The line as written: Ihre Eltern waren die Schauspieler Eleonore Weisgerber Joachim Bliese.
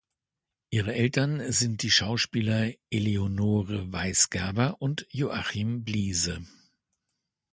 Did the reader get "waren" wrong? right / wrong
wrong